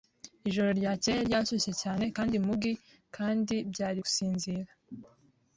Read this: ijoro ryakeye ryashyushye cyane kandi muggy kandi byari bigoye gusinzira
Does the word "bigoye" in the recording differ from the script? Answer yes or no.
yes